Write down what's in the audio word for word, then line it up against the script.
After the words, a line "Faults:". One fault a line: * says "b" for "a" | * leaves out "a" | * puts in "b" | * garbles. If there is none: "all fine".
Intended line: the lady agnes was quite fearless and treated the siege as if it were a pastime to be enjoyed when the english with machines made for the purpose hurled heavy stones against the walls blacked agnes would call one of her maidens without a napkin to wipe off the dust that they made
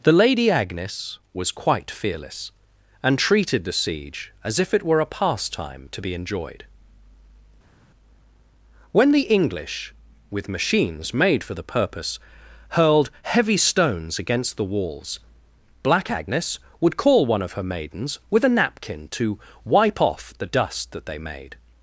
the lady agnes was quite fearless and treated the siege as if it were a pastime to be enjoyed when the english with machines made for the purpose hurled heavy stones against the walls black agnes would call one of her maidens with a napkin to wipe off the dust that they made
Faults:
* says "black" for "blacked"
* says "with" for "without"